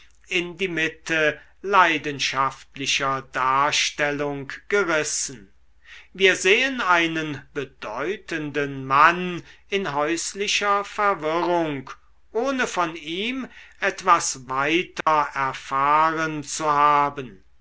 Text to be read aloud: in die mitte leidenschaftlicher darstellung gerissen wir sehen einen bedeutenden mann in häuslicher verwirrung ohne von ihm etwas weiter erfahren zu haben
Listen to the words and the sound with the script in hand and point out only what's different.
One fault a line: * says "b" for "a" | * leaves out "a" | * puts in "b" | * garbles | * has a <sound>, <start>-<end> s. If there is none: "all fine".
* has a dropout, 15.0-15.1 s